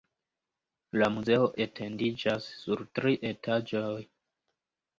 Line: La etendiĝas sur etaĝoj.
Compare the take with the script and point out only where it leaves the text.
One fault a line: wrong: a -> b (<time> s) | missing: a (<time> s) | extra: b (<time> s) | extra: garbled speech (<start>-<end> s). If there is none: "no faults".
extra: muzeo (1.2 s)
extra: tri (3.0 s)